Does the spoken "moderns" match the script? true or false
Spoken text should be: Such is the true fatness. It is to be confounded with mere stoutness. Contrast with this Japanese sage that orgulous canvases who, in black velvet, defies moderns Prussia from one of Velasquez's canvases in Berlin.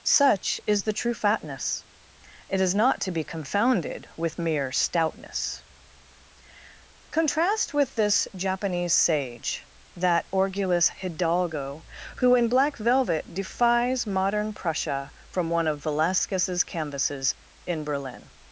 false